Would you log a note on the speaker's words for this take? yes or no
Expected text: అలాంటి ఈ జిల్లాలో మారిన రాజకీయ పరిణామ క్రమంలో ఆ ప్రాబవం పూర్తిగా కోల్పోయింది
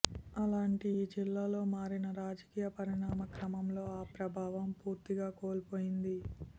no